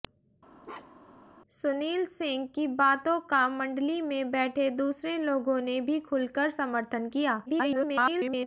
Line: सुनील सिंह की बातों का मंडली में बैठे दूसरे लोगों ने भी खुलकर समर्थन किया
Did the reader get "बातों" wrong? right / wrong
right